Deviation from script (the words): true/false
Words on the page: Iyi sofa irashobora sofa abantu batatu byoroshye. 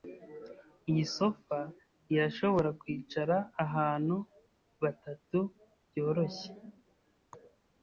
true